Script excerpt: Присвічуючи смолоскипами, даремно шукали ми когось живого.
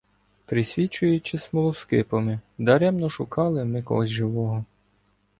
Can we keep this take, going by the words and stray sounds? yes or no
yes